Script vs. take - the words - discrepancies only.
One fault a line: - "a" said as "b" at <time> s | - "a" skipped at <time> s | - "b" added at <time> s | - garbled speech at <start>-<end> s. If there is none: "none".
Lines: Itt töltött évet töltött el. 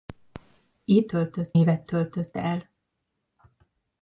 none